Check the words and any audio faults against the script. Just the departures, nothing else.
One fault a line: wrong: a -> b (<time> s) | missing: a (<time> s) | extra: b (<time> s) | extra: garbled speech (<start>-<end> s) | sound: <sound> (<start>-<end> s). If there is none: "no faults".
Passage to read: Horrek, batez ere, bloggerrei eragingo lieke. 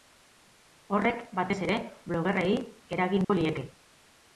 sound: dropout (3.2-3.3 s)